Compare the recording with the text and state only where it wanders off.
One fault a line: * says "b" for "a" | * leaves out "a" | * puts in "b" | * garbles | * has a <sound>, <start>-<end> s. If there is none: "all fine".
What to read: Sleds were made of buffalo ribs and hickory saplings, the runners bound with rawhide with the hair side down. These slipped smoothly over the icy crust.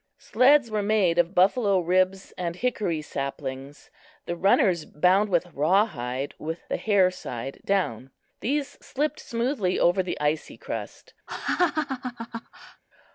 * has a laugh, 11.3-12.8 s